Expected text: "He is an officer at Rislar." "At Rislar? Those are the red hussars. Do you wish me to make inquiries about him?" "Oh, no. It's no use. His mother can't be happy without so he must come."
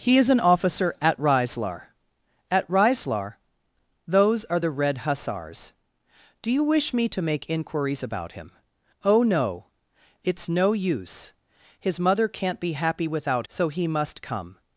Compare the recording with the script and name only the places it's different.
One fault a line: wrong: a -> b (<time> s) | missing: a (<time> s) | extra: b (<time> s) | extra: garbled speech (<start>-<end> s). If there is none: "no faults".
no faults